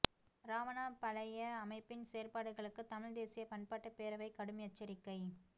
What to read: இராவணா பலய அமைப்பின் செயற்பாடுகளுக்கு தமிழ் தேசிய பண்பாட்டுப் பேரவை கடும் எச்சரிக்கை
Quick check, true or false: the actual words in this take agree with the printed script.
true